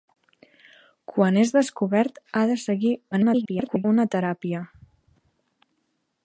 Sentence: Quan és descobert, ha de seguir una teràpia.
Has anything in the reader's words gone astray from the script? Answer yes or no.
yes